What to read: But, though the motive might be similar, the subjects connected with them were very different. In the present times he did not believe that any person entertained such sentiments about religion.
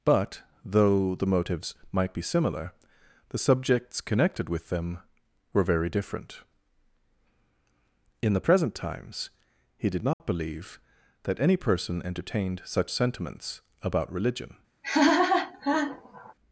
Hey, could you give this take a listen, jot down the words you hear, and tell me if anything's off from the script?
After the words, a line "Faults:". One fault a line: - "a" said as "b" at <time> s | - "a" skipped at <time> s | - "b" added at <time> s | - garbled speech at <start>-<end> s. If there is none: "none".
But, though the motives might be similar, the subjects connected with them were very different. In the present times he did not believe that any person entertained such sentiments about religion.
Faults:
- "motive" said as "motives" at 1.3 s